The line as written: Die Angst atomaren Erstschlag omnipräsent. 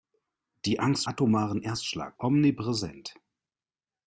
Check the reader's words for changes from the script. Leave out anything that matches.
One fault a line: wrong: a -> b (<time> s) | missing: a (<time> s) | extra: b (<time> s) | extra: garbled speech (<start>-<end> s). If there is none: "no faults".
no faults